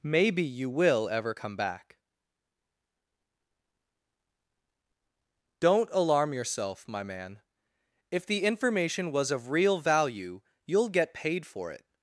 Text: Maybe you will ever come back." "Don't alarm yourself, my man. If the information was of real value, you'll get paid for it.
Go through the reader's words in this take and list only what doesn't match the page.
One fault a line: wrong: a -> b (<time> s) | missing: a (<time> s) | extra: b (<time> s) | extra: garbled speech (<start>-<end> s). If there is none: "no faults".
no faults